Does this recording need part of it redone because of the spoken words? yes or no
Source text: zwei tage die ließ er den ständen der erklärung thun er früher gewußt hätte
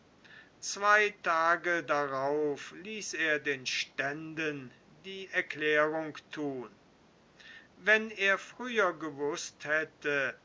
yes